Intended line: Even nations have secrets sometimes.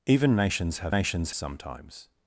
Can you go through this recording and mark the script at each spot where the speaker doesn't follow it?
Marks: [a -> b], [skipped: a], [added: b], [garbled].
Even nations have [secrets -> nations] sometimes.